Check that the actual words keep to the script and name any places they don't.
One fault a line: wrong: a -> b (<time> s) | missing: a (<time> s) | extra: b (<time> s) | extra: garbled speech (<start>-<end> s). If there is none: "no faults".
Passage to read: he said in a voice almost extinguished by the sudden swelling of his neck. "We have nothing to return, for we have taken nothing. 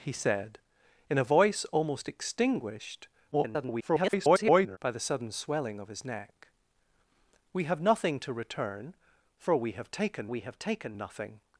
extra: garbled speech (3.3-4.8 s)
extra: we have taken (10.2 s)